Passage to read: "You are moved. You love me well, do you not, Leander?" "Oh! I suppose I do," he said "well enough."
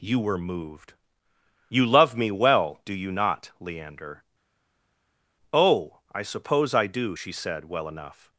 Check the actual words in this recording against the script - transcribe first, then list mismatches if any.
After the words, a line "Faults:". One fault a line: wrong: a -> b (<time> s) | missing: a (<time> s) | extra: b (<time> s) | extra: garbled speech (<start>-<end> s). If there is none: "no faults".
"You were moved. You love me well, do you not, Leander?" "Oh! I suppose I do," she said "well enough."
Faults:
wrong: are -> were (0.2 s)
wrong: he -> she (7.1 s)